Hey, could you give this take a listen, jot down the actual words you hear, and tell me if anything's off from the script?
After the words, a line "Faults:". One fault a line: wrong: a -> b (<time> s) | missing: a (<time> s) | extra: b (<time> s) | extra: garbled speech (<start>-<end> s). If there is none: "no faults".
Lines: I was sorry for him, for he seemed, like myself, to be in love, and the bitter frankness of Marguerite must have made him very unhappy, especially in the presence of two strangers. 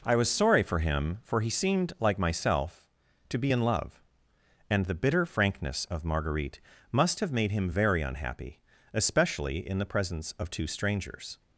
I was sorry for him, for he seemed, like myself, to be in love, and the bitter frankness of Marguerite must have made him very unhappy, especially in the presence of two strangers.
Faults:
no faults